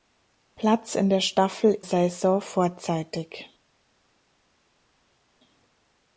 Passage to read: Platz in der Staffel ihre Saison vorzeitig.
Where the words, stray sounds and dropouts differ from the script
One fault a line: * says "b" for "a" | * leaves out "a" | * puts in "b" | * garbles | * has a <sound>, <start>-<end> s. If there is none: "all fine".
* leaves out "ihre"